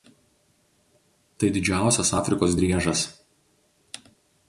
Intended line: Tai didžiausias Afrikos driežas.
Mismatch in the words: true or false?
false